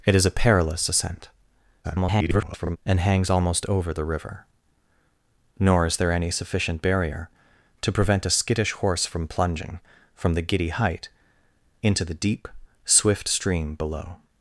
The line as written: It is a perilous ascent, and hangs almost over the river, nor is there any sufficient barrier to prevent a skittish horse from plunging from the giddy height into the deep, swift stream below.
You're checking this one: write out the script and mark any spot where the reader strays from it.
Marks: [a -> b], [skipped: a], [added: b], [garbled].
It is a perilous ascent, [garbled] and hangs almost over the river, nor is there any sufficient barrier to prevent a skittish horse from plunging from the giddy height into the deep, swift stream below.